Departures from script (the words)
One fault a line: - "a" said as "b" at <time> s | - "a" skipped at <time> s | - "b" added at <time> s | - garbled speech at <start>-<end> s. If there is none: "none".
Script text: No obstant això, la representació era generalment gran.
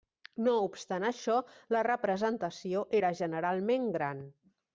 none